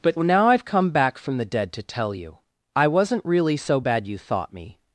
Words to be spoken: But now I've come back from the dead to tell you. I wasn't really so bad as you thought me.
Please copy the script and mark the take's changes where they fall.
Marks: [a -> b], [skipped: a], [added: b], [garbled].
But now I've come back from the dead to tell you. I wasn't really so bad [skipped: as] you thought me.